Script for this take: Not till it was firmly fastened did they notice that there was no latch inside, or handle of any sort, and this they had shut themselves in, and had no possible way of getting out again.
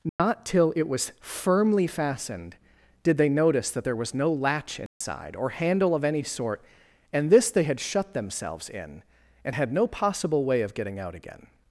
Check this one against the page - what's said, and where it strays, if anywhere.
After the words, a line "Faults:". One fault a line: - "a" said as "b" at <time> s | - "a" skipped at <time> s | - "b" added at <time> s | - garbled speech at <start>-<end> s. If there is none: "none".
Not till it was firmly fastened did they notice that there was no latch inside, or handle of any sort, and this they had shut themselves in, and had no possible way of getting out again.
Faults:
none